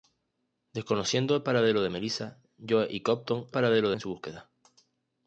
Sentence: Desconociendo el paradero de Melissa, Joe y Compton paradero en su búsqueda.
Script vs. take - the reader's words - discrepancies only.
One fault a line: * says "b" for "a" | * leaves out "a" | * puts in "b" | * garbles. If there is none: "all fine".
all fine